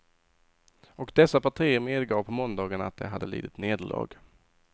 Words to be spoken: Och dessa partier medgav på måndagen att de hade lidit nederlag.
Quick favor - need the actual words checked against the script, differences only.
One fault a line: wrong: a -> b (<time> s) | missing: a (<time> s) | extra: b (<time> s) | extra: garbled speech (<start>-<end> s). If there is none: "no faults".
no faults